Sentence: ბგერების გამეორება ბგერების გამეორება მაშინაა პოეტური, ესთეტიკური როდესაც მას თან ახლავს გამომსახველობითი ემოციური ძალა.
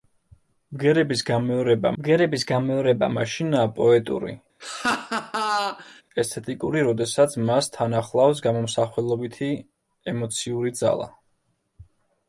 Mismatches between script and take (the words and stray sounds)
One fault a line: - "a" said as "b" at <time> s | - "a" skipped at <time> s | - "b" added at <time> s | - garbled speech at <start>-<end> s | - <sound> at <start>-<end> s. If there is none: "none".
- laugh at 4.6-6.0 s